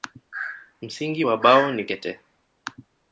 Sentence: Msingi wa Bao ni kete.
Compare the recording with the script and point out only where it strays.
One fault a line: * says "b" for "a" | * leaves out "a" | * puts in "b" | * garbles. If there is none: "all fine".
all fine